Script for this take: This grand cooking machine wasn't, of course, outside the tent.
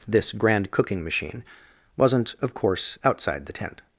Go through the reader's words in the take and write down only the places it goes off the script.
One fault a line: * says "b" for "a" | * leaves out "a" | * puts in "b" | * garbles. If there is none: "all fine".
all fine